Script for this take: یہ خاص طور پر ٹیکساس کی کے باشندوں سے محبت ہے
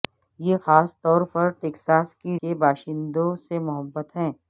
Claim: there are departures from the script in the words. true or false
false